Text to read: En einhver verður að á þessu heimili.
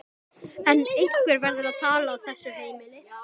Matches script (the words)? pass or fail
fail